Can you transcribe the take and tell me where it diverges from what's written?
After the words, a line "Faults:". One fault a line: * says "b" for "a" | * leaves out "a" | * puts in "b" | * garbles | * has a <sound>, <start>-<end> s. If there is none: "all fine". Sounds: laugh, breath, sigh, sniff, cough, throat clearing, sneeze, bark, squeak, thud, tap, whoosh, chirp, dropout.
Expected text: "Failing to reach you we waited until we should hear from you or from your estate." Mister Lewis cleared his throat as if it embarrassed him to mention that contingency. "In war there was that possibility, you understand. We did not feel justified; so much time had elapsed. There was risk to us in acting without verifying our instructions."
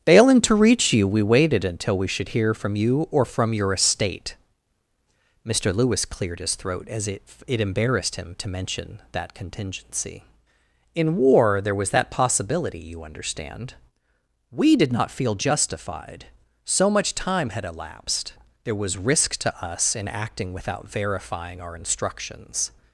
"Failing to reach you we waited until we should hear from you or from your estate." Mister Lewis cleared his throat as if it embarrassed him to mention that contingency. "In war there was that possibility, you understand. We did not feel justified; so much time had elapsed. There was risk to us in acting without verifying our instructions."
Faults:
all fine